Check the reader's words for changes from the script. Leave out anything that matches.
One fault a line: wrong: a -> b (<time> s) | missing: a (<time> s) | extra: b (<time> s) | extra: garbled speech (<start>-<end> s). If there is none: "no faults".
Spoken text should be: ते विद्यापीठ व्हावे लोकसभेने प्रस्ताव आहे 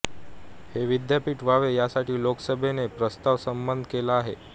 wrong: ते -> हे (0.7 s)
extra: यासाठी (1.7 s)
extra: संमत केला (3.4 s)